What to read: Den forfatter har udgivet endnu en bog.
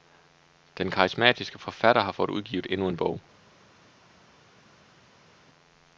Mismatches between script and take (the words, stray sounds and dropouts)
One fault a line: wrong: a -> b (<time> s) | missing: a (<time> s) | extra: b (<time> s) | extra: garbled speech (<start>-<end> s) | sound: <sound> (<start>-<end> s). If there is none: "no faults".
extra: karismatiske (0.9 s)
extra: fået (2.1 s)